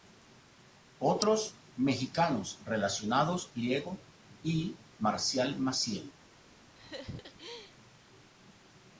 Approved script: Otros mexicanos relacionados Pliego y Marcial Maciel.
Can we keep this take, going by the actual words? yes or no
yes